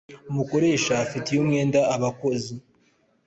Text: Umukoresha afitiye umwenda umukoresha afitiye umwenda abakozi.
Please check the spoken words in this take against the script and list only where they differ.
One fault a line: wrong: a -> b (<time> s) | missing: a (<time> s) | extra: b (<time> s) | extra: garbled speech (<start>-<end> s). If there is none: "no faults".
missing: umukoresha afitiye umwenda (1.8 s)